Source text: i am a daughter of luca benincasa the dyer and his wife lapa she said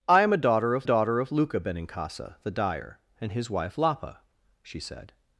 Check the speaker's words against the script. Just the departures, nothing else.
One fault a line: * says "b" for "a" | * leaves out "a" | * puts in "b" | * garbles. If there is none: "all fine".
* puts in "daughter of"